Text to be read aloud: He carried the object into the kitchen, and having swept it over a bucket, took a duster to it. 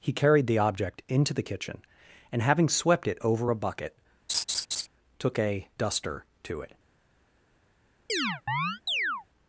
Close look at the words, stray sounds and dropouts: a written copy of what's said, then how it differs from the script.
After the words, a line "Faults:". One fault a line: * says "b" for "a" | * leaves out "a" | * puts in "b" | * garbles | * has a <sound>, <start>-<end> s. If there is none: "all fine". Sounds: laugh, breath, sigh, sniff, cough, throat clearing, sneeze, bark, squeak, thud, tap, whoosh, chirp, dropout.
He carried the object into the kitchen, and having swept it over a bucket, took a duster to it.
Faults:
* has a laugh, 4.3-4.9 s
* has a chirp, 8.1-9.3 s